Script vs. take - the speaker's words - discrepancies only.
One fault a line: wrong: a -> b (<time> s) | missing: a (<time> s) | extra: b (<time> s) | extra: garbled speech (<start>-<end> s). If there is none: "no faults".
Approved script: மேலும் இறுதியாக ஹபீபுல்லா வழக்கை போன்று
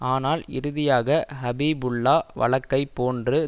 wrong: மேலும் -> ஆனால் (0.0 s)